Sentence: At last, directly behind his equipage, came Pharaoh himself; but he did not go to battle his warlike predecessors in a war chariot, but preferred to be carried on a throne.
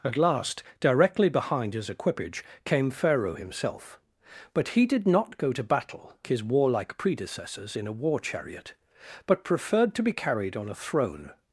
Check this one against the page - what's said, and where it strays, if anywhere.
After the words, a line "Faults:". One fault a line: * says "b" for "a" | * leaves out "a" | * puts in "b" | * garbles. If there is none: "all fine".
At last, directly behind his equipage, came Pharaoh himself; but he did not go to battle his warlike predecessors in a war chariot, but preferred to be carried on a throne.
Faults:
all fine